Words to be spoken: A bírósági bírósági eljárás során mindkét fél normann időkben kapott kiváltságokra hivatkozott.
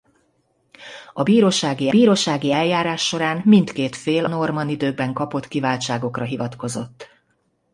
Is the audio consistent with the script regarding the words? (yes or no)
yes